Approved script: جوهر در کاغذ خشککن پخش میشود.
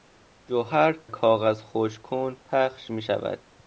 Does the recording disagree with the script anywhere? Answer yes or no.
yes